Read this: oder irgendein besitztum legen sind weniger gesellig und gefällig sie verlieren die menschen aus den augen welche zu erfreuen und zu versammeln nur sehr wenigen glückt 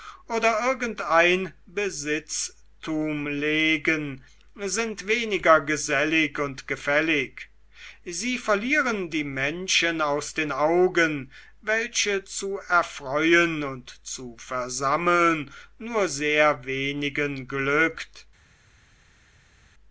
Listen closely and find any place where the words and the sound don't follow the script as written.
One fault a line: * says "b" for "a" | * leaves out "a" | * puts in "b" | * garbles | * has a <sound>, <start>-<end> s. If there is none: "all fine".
all fine